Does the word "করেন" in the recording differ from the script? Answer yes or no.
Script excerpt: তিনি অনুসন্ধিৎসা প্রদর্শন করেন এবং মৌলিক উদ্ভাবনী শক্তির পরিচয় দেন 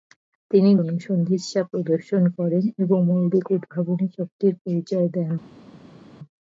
no